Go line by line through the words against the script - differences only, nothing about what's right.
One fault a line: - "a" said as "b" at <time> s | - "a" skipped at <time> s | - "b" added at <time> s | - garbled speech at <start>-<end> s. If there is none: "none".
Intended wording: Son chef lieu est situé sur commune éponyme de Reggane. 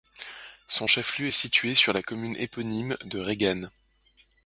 - "la" added at 1.9 s